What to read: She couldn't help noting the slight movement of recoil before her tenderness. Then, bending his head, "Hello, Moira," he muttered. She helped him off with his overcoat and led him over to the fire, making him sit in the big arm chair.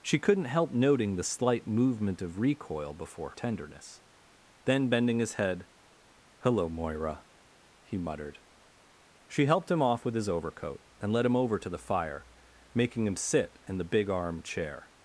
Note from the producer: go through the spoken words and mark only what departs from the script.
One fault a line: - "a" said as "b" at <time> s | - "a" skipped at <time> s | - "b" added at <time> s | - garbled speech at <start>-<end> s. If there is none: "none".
- "her" skipped at 3.3 s